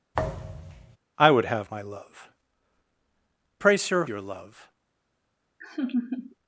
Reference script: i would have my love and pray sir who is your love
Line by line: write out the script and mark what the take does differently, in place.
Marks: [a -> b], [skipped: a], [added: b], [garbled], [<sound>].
[thud] i would have my love [skipped: and] pray sir [skipped: who is] your love [laugh]